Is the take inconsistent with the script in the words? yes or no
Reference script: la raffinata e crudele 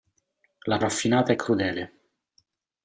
no